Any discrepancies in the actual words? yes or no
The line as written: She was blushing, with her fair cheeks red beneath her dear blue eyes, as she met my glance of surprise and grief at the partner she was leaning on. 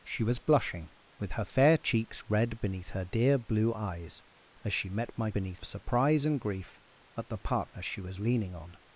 yes